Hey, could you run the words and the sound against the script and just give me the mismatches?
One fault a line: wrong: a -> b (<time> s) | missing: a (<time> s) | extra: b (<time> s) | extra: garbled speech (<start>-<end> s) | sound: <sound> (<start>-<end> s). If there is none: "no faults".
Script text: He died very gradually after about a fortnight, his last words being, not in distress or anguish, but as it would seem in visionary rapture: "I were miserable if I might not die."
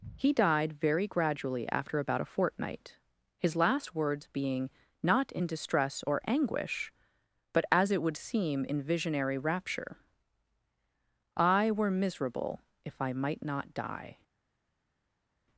no faults